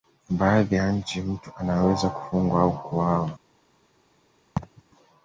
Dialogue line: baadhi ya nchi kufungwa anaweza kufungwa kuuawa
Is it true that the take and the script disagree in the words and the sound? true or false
true